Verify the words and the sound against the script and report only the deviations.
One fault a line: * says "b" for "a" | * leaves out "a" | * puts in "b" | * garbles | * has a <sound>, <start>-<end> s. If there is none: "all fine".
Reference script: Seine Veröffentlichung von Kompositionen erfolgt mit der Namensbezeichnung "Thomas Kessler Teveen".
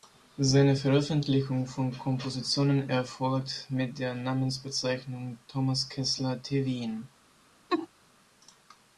* has a laugh, 7.7-7.9 s